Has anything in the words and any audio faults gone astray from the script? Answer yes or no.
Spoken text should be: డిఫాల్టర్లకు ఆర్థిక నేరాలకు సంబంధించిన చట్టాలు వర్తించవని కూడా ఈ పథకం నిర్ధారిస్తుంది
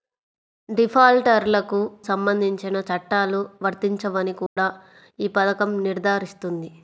yes